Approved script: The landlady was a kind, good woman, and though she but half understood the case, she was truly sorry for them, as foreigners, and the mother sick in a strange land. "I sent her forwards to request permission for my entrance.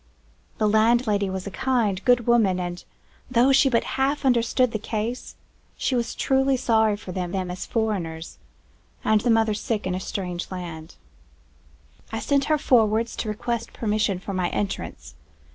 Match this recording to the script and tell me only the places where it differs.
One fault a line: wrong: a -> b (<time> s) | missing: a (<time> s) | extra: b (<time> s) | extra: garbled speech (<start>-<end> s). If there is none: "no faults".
extra: them (7.3 s)